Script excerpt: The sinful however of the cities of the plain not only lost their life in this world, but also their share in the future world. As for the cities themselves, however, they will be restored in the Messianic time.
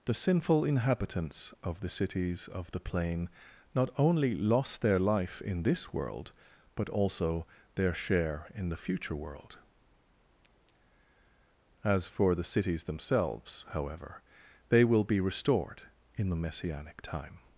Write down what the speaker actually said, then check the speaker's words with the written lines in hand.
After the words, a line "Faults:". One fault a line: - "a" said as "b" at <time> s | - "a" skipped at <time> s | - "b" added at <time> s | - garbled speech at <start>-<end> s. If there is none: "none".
The sinful inhabitants of the cities of the plain not only lost their life in this world, but also their share in the future world. As for the cities themselves, however, they will be restored in the Messianic time.
Faults:
- "however" said as "inhabitants" at 0.7 s